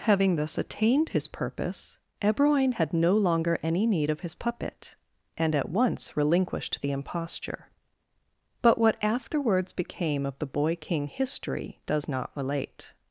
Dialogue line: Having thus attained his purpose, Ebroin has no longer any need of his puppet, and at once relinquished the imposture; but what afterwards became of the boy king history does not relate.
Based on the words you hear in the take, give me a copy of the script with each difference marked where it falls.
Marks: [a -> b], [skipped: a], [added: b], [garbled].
Having thus attained his purpose, Ebroin [has -> had] no longer any need of his puppet, and at once relinquished the imposture; but what afterwards became of the boy king history does not relate.